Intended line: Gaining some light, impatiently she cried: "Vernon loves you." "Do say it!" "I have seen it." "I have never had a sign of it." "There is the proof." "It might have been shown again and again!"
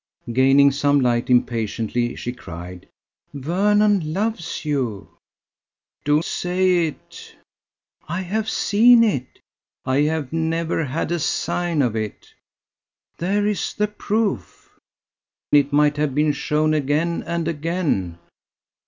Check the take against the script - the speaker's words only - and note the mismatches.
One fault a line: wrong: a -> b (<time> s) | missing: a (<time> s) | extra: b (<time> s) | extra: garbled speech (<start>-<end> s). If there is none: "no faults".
no faults